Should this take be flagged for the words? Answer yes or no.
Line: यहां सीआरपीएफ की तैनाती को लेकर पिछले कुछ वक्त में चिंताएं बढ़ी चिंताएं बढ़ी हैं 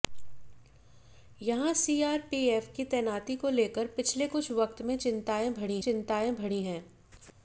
no